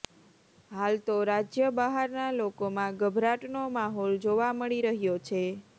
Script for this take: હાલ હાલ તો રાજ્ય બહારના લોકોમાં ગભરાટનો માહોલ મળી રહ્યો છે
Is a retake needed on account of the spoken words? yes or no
yes